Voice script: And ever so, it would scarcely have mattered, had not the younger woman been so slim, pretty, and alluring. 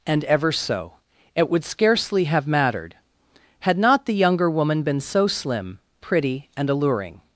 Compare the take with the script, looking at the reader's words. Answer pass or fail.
pass